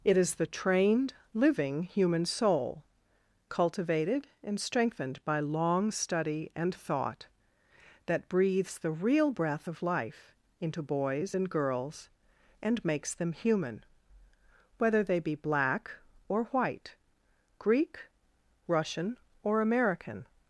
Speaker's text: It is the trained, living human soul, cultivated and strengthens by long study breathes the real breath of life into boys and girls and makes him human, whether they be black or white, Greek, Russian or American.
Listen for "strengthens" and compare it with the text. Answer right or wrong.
wrong